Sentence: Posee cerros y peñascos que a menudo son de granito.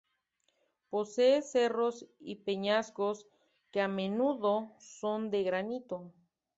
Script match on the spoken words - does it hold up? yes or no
yes